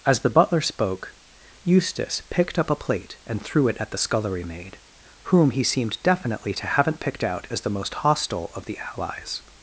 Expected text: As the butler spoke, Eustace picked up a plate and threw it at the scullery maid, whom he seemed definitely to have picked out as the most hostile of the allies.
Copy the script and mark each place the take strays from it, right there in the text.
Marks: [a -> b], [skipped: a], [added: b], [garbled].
As the butler spoke, Eustace picked up a plate and threw it at the scullery maid, whom he seemed definitely to [have -> haven't] picked out as the most hostile of the allies.